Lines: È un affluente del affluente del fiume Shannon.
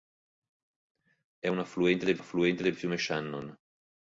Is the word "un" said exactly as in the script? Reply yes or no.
yes